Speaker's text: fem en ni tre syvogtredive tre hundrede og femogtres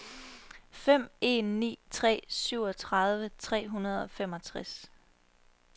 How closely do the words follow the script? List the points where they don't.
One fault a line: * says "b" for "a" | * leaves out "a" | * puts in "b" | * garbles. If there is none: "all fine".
all fine